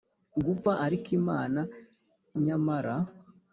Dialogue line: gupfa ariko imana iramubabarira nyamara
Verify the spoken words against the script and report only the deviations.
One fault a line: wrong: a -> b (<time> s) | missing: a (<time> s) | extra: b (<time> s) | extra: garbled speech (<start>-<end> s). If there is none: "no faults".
missing: iramubabarira (1.6 s)